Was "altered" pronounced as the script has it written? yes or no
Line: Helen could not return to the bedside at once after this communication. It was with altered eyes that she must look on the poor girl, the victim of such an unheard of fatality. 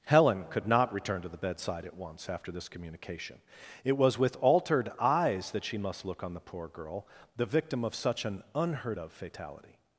yes